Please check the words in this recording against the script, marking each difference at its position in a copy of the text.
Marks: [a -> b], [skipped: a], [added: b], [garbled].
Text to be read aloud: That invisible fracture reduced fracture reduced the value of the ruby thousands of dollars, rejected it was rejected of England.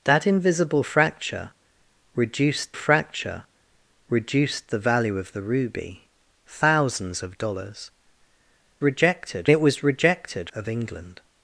That invisible fracture reduced fracture reduced the value of the ruby thousands of dollars, rejected it was rejected of England.